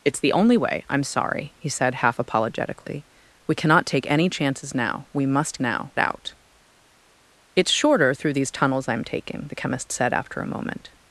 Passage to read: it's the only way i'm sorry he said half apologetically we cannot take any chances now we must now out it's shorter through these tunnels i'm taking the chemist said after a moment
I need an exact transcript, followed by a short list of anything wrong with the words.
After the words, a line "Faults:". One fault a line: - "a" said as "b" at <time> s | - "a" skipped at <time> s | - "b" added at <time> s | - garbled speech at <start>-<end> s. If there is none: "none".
it's the only way i'm sorry he said half apologetically we cannot take any chances now we must now out it's shorter through these tunnels i'm taking the chemist said after a moment
Faults:
none